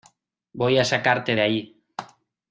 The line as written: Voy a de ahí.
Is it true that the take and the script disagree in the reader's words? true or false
true